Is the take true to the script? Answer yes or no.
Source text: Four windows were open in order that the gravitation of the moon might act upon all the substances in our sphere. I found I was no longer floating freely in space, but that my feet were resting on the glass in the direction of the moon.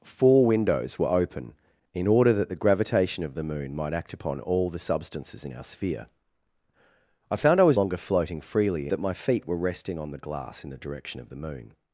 no